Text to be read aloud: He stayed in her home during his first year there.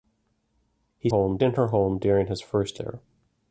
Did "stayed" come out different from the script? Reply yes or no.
yes